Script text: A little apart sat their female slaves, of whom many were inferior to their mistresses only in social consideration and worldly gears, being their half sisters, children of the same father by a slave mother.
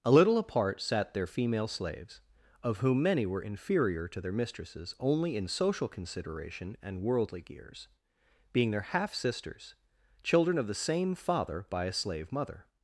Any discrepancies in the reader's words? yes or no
no